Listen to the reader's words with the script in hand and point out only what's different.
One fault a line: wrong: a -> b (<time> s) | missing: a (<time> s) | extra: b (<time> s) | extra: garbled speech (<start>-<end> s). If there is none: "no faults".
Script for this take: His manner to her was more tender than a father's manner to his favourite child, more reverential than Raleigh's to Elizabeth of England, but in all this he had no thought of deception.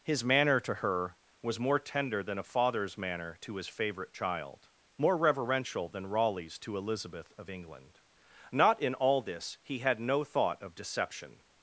wrong: but -> not (8.5 s)